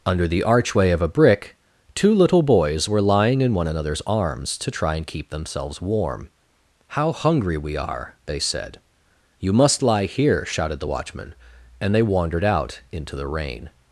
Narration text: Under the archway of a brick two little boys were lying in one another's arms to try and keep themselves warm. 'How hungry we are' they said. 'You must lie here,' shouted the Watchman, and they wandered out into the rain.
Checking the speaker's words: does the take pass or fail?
pass